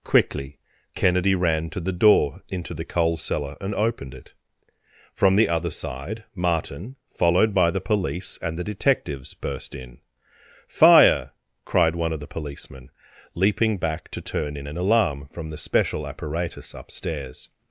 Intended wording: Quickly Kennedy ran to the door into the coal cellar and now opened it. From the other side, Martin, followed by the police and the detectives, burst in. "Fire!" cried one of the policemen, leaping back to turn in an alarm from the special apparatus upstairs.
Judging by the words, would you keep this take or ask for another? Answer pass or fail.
fail